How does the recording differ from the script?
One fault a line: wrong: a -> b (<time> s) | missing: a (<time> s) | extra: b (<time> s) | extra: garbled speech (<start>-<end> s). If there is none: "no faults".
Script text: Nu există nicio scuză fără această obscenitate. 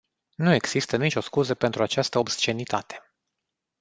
wrong: fără -> pentru (1.5 s)